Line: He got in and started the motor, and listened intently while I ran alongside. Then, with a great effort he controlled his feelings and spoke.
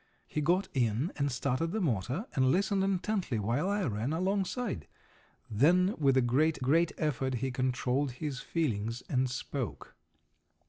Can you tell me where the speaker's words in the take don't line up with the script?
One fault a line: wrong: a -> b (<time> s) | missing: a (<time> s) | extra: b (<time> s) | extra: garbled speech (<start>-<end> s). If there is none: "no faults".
extra: great (6.6 s)